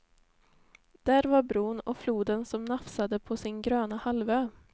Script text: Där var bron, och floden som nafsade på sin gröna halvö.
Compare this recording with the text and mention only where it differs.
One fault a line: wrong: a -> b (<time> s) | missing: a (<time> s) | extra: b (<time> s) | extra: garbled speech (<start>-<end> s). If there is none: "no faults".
no faults